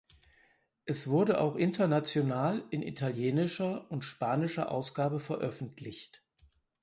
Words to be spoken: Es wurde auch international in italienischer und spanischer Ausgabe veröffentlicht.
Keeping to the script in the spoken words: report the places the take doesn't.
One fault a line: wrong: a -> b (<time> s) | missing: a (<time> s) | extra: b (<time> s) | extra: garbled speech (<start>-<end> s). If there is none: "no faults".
no faults